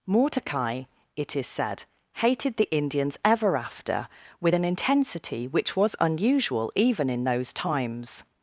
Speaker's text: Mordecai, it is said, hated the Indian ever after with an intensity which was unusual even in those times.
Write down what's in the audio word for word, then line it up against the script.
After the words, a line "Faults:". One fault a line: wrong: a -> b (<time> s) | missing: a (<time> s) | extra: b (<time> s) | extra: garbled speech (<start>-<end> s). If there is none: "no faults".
Mordecai, it is said, hated the Indians ever after with an intensity which was unusual even in those times.
Faults:
wrong: Indian -> Indians (2.8 s)